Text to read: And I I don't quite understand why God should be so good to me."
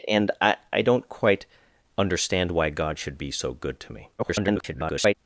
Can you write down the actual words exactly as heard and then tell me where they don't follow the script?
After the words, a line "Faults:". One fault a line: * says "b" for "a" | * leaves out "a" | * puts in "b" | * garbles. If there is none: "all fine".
And I I don't quite understand why God should be so good to me." [garbled]
Faults:
* garbles